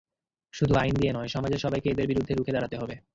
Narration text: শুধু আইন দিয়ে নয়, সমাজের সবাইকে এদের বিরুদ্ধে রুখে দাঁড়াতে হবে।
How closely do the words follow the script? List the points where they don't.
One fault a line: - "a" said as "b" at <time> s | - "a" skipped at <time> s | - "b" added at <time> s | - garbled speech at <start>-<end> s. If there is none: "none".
none